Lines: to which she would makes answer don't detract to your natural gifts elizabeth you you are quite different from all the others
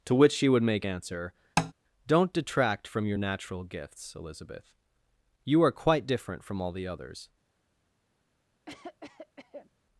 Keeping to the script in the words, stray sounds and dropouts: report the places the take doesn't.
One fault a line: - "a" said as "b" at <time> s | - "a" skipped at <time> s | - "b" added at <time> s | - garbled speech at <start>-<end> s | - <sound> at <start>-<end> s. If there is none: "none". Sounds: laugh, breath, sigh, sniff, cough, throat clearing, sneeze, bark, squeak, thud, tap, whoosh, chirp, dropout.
- "makes" said as "make" at 0.6 s
- tap at 1.6-1.7 s
- "to" said as "from" at 2.9 s
- "you" skipped at 5.6 s
- cough at 8.7-9.7 s